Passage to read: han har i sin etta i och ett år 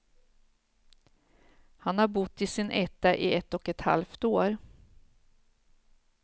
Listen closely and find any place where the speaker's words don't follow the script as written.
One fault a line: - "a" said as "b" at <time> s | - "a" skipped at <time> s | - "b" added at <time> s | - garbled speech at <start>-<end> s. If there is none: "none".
- "bott" added at 2.1 s
- "ett" added at 3.3 s
- "halvt" added at 3.8 s